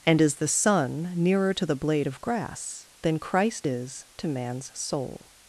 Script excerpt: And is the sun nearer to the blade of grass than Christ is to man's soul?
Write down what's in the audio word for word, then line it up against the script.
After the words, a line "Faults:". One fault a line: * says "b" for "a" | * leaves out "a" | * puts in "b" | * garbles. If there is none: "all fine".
And is the sun nearer to the blade of grass than Christ is to man's soul?
Faults:
all fine